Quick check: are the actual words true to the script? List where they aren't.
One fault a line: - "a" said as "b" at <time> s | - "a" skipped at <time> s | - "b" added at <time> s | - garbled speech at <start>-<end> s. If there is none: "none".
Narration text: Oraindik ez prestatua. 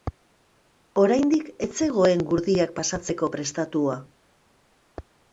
- "zegoen gurdiak pasatzeko" added at 1.9 s